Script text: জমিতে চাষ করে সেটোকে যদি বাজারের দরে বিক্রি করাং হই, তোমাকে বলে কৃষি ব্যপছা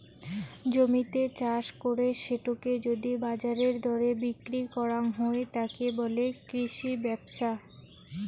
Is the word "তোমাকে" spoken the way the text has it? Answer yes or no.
no